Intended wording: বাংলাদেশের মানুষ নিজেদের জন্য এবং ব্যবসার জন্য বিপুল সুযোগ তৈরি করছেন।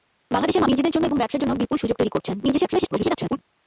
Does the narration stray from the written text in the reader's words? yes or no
yes